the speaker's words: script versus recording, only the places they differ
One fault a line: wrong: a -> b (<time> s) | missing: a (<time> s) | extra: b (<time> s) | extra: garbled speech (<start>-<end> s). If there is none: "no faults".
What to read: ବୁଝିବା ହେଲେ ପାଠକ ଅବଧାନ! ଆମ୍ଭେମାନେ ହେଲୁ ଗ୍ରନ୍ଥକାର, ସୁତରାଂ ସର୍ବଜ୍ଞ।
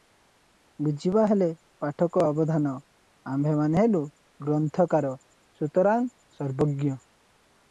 no faults